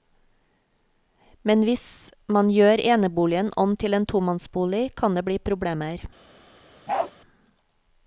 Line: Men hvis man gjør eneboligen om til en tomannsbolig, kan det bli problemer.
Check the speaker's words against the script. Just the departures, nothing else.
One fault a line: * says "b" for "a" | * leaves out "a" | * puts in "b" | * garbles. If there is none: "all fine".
all fine